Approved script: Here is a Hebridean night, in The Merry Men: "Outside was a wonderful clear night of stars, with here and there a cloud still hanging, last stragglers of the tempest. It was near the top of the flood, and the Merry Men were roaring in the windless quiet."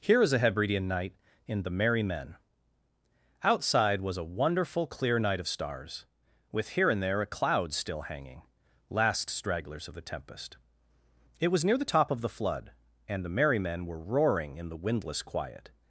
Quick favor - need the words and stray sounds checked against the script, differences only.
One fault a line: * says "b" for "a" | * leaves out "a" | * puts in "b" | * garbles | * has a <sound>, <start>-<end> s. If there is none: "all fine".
all fine